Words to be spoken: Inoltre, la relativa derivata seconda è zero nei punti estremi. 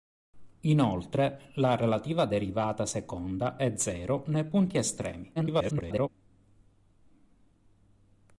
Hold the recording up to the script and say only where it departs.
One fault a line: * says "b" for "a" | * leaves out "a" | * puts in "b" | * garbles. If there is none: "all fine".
* garbles